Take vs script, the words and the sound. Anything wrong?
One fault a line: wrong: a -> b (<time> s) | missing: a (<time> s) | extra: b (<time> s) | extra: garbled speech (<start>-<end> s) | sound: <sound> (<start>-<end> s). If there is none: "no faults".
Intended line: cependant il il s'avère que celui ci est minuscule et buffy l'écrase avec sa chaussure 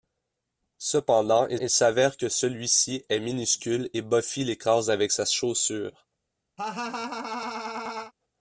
sound: laugh (6.6-8.1 s)